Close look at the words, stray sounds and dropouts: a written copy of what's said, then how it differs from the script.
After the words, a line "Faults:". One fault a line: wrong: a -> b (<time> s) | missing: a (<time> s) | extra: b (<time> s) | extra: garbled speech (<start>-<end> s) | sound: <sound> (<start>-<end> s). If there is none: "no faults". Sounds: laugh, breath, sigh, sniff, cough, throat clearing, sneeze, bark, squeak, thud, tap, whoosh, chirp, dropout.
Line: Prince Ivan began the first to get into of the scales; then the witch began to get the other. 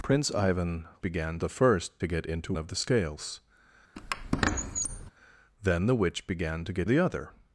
Prince Ivan began the first to get into of the scales; then the witch began to get the other.
Faults:
sound: squeak (4.0-5.1 s)